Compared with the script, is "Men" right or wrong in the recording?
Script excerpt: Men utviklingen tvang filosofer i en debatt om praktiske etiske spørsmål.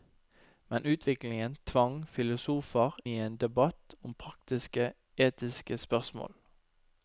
right